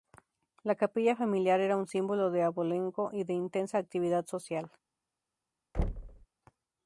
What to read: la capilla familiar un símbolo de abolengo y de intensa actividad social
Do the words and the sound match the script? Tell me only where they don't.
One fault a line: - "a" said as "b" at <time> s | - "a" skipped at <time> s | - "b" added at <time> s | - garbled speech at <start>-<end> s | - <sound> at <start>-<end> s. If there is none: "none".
- "era" added at 1.6 s
- thud at 5.7-6.3 s